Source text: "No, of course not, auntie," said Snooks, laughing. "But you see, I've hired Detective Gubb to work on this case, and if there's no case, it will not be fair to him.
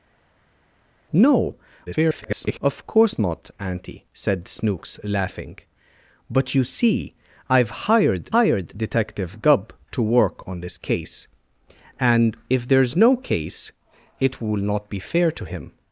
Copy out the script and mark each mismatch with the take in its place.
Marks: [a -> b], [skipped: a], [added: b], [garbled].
"No, [garbled] of course not, auntie," said Snooks, laughing. "But you see, I've hired [added: hired] Detective Gubb to work on this case, and if there's no case, it will not be fair to him.